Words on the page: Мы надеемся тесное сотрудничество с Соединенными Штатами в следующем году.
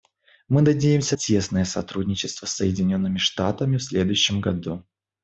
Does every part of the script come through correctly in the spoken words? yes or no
yes